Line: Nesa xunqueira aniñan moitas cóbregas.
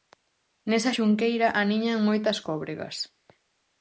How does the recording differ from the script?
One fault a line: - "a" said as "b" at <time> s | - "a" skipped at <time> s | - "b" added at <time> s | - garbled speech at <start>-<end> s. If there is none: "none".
none